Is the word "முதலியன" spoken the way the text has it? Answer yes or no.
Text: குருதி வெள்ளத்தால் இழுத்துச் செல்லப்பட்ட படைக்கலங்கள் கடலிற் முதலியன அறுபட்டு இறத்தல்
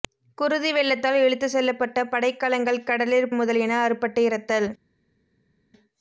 yes